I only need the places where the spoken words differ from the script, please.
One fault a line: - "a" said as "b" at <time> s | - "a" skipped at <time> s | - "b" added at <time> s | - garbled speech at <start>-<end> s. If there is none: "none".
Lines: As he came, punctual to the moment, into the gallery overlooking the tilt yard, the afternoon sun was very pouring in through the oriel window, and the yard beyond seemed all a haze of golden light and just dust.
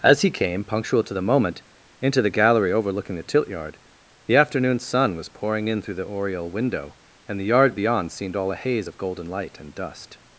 - "very" skipped at 5.3 s
- "just" skipped at 9.7 s